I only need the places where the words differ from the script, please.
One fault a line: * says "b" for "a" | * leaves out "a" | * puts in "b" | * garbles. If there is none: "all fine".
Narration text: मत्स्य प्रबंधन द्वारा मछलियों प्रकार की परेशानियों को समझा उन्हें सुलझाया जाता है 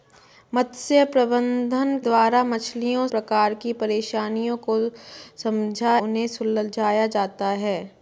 all fine